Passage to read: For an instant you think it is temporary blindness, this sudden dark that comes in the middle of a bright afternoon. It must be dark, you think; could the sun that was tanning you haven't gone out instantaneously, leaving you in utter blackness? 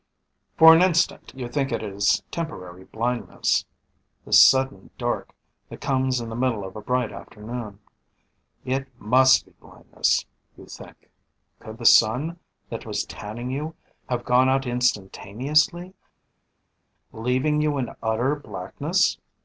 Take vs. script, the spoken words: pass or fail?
fail